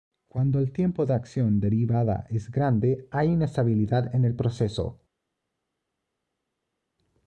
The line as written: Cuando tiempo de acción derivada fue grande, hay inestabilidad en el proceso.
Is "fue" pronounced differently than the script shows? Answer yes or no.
yes